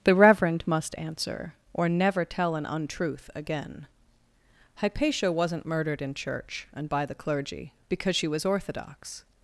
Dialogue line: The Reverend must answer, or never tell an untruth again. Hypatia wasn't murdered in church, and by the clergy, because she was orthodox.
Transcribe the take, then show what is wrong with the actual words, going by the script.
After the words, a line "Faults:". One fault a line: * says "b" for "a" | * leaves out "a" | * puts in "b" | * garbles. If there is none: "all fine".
The Reverend must answer, or never tell an untruth again. Hypatia wasn't murdered in church, and by the clergy, because she was orthodox.
Faults:
all fine